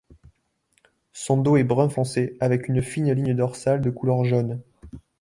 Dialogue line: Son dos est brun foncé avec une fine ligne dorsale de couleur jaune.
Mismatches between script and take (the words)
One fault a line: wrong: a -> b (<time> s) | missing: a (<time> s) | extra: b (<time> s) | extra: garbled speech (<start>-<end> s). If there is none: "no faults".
no faults